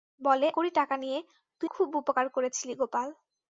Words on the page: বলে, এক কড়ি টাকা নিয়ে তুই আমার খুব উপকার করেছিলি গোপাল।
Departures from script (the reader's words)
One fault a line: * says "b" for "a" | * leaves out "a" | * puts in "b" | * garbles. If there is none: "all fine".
* leaves out "এক"
* leaves out "আমার"